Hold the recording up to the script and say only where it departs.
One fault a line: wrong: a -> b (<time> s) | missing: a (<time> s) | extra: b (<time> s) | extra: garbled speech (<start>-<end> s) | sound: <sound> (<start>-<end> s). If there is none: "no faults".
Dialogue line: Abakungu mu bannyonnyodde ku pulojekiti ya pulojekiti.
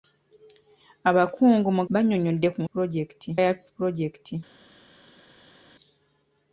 no faults